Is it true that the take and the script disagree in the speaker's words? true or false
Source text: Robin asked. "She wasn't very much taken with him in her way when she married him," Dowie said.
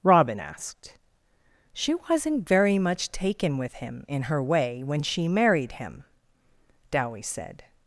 false